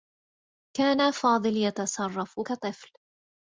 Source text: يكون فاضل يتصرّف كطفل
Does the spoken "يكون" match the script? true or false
false